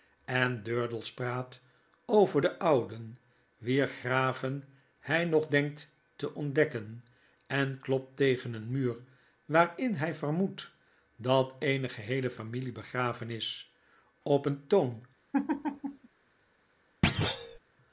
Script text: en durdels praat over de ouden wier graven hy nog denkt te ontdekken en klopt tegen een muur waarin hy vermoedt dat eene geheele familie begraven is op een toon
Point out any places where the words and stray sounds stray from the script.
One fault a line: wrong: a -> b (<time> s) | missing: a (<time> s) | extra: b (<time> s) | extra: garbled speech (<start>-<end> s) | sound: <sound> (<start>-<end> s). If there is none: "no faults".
sound: laugh (15.3-16.1 s)
sound: thud (17.0-17.6 s)